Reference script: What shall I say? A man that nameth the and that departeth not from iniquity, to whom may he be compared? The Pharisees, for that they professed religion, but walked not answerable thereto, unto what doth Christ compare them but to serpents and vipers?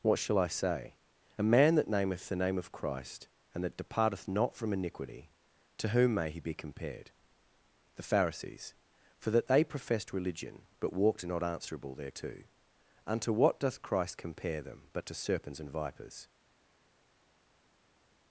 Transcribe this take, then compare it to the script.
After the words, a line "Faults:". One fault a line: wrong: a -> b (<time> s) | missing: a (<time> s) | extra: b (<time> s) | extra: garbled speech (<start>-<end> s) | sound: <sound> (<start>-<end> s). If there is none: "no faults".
What shall I say? A man that nameth the name of Christ, and that departeth not from iniquity, to whom may he be compared? The Pharisees, for that they professed religion, but walked not answerable thereto, unto what doth Christ compare them but to serpents and vipers?
Faults:
extra: name of Christ (2.4 s)